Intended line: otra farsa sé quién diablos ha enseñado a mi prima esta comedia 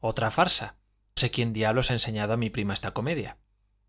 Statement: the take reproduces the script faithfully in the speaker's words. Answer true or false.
true